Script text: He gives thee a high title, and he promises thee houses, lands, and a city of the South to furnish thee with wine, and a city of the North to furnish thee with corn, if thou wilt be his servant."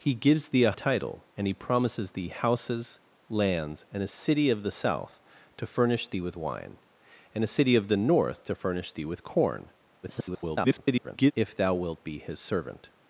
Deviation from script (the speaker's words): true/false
true